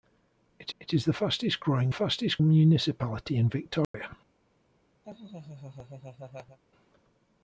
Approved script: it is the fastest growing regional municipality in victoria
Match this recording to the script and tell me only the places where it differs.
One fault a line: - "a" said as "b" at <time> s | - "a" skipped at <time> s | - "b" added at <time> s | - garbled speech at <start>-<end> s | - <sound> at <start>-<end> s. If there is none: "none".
- "it" added at 0.8 s
- "regional" said as "fastest" at 1.9 s
- dropout at 3.8-3.9 s
- laugh at 5.0-6.6 s